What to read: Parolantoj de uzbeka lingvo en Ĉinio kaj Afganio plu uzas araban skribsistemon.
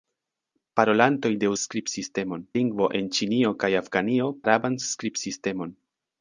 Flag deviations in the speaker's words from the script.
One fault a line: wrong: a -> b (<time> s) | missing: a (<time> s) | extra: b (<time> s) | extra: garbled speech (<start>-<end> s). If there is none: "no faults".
wrong: uzbeka -> skribsistemon (1.6 s)
missing: plu uzas (4.3 s)